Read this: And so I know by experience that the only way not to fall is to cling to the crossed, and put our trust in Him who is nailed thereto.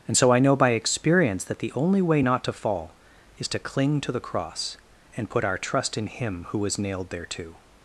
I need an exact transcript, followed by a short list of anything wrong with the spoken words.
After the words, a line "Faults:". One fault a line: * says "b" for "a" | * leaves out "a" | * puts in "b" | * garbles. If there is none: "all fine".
And so I know by experience that the only way not to fall is to cling to the cross, and put our trust in Him who was nailed thereto.
Faults:
* says "cross" for "crossed"
* says "was" for "is"